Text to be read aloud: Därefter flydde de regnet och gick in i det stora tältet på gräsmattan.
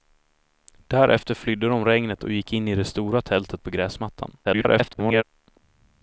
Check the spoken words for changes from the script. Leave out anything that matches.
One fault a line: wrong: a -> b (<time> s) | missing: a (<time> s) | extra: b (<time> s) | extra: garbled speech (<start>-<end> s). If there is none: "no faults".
extra: garbled speech (4.4-5.2 s)